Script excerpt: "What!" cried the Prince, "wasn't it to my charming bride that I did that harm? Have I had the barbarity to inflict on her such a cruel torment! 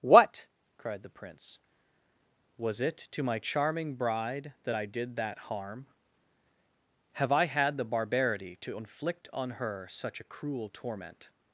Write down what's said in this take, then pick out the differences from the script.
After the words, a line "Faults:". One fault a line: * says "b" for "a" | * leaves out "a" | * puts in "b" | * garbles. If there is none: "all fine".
"What!" cried the Prince, "was it to my charming bride that I did that harm? Have I had the barbarity to inflict on her such a cruel torment!
Faults:
* says "was" for "wasn't"